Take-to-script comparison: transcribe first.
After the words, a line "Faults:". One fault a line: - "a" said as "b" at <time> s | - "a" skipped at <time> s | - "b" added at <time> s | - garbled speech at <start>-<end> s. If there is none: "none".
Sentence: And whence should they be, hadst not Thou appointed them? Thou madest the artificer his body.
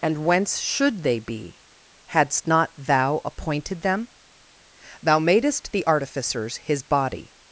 And whence should they be, hadst not Thou appointed them? Thou madest the artificers his body.
Faults:
- "artificer" said as "artificers" at 5.9 s